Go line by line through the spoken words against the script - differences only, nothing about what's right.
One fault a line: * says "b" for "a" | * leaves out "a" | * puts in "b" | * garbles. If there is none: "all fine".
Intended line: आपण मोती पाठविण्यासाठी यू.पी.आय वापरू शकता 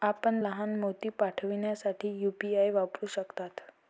* puts in "लहान"